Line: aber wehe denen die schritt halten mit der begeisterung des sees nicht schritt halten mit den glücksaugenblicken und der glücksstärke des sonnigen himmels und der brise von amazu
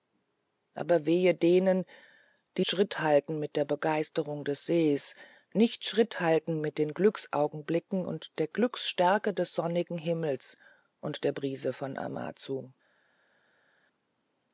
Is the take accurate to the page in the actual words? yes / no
yes